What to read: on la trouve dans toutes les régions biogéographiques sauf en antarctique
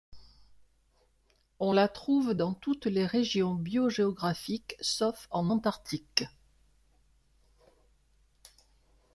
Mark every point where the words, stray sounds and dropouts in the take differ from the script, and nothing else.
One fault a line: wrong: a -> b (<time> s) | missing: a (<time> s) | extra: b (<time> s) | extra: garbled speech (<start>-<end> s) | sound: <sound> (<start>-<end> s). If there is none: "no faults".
no faults